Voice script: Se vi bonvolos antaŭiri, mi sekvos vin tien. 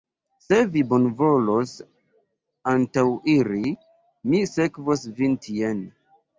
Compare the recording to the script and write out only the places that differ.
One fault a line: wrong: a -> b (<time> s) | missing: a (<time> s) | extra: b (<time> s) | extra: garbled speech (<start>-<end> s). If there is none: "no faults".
no faults